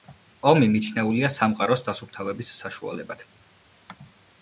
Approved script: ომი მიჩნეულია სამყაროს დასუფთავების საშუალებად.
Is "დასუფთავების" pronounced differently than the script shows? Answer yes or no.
no